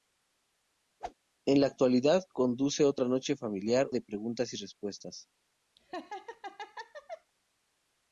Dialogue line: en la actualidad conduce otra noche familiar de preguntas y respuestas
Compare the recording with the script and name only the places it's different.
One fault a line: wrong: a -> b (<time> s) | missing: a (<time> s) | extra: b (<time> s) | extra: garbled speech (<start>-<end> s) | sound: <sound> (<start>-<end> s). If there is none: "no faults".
sound: whoosh (1.0-1.1 s)
sound: laugh (5.8-7.3 s)